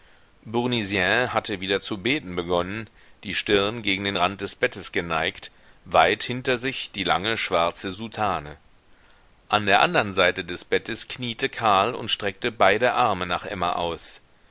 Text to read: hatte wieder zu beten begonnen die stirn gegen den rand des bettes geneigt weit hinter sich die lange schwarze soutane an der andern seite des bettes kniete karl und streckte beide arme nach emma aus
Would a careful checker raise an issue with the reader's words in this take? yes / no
no